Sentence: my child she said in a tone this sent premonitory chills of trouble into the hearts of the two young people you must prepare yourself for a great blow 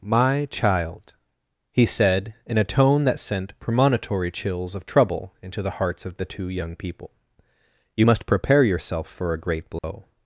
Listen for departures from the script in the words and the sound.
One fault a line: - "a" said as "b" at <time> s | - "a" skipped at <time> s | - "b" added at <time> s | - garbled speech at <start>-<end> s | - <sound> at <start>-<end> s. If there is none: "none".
- "she" said as "he" at 1.7 s
- "this" said as "that" at 3.0 s
- dropout at 9.8-9.8 s